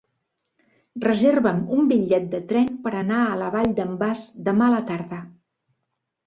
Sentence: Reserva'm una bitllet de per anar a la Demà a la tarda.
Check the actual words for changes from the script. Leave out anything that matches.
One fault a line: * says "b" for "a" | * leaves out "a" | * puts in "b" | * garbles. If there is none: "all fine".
* says "un" for "una"
* puts in "tren"
* puts in "Vall d'en Bas"